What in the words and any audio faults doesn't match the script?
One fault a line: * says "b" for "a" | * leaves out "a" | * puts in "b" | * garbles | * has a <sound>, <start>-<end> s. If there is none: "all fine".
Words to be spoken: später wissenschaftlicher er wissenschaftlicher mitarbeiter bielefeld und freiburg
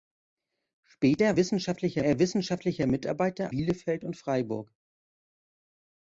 all fine